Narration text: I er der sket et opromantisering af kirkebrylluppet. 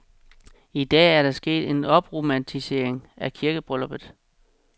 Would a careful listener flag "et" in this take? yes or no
yes